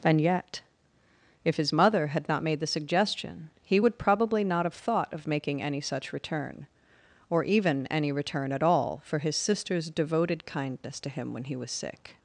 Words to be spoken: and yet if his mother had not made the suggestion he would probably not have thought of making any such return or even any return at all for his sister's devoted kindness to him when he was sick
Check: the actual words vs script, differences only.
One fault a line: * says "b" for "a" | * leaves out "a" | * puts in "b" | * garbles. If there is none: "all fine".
all fine